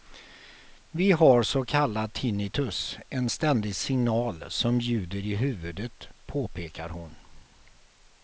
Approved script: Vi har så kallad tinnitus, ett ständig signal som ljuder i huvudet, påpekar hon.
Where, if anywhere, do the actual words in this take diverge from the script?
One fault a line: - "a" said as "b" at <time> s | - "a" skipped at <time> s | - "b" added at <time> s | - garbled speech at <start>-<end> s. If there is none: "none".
- "ett" said as "en" at 3.1 s